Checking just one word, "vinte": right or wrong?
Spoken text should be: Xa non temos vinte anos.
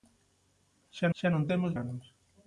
wrong